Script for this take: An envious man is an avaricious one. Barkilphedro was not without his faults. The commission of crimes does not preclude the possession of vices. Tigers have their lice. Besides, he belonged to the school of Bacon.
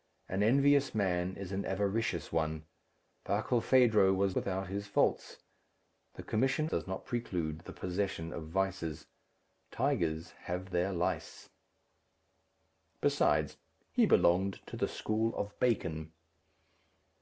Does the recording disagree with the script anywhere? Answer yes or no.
yes